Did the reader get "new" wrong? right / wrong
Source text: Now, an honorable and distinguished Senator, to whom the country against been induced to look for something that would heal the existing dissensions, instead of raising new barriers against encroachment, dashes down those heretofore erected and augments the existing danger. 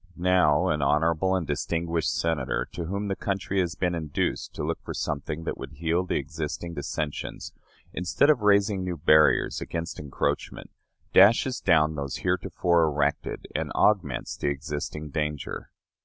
right